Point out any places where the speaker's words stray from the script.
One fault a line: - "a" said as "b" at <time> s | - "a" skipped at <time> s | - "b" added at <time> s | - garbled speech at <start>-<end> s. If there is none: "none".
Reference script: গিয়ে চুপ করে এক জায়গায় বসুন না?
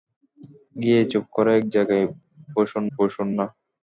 - "বসুন" added at 3.0 s